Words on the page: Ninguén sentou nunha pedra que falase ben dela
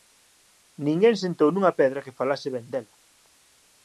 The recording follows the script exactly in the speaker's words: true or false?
true